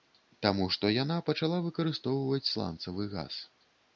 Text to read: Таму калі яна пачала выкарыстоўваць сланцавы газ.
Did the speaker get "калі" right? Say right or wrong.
wrong